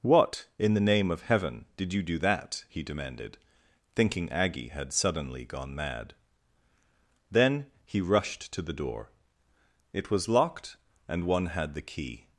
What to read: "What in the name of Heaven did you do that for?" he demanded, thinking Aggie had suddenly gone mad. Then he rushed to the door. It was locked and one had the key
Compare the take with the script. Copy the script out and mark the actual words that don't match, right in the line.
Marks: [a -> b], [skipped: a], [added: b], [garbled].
"What in the name of Heaven did you do that [skipped: for?"] he demanded, thinking Aggie had suddenly gone mad. Then he rushed to the door. It was locked and one had the key